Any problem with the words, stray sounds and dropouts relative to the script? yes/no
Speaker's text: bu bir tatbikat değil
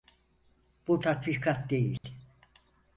yes